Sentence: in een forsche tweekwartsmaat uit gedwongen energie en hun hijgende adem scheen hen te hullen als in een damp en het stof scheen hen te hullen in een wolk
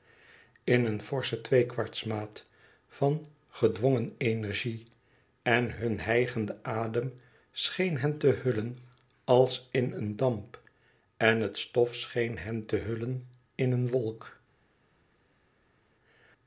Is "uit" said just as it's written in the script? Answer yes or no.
no